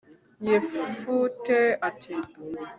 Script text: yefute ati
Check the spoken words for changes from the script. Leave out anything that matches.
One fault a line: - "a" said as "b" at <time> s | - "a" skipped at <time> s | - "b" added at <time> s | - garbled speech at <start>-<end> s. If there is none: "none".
none